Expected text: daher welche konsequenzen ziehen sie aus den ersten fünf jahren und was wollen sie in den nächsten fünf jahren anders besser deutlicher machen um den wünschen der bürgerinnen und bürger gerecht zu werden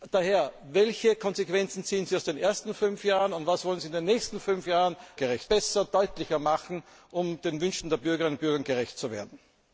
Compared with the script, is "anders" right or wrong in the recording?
wrong